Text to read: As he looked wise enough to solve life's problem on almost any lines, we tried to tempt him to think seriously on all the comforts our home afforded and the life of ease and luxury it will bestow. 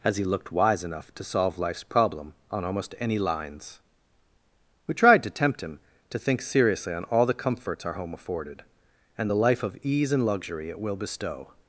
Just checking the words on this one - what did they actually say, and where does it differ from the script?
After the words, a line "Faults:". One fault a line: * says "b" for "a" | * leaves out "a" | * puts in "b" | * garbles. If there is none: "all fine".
As he looked wise enough to solve life's problem on almost any lines, we tried to tempt him to think seriously on all the comforts our home afforded and the life of ease and luxury it will bestow.
Faults:
all fine